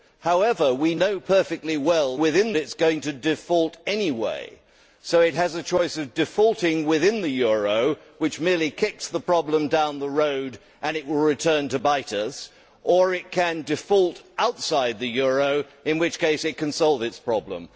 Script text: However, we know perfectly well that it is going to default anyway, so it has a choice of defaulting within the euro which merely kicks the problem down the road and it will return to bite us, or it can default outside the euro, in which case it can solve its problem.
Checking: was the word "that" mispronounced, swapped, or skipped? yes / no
yes